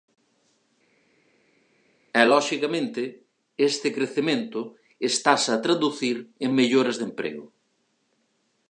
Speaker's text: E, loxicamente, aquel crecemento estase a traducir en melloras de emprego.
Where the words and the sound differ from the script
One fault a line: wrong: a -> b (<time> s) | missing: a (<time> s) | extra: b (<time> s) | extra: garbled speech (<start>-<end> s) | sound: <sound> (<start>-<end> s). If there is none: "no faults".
wrong: aquel -> este (3.7 s)